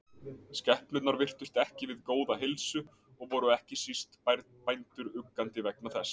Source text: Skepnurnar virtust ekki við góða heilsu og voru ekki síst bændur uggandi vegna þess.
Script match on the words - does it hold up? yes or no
yes